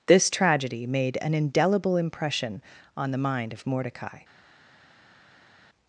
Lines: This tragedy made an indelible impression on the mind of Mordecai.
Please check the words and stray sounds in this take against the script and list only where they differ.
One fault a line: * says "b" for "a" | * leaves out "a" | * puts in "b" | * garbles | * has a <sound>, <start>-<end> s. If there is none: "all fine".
all fine